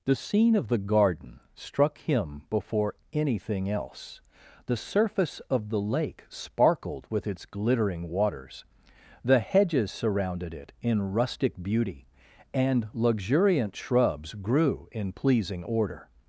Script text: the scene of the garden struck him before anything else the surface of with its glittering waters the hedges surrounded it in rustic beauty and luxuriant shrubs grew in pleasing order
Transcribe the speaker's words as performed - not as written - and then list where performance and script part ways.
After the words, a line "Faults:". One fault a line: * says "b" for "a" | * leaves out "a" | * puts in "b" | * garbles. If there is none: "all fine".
the scene of the garden struck him before anything else the surface of the lake sparkled with its glittering waters the hedges surrounded it in rustic beauty and luxuriant shrubs grew in pleasing order
Faults:
* puts in "the lake sparkled"